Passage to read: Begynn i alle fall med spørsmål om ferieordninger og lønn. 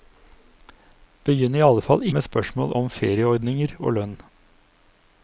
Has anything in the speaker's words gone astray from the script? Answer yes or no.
no